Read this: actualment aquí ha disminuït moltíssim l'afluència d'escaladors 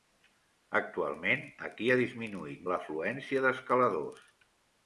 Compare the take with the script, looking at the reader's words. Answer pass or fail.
fail